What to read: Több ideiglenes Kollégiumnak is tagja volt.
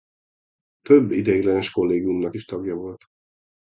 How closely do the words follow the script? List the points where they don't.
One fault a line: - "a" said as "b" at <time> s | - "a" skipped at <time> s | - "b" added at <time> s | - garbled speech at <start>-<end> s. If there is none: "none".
none